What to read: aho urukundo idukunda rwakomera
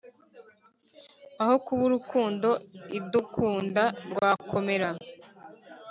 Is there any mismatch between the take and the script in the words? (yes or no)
yes